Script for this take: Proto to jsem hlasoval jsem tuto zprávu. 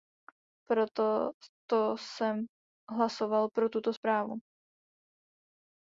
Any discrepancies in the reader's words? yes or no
yes